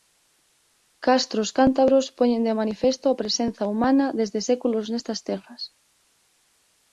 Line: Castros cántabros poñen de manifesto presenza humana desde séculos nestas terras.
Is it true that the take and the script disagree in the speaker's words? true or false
true